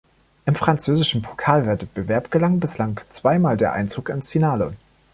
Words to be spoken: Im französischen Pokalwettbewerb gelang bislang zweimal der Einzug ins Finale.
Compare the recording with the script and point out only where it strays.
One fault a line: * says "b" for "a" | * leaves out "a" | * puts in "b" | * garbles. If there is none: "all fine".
all fine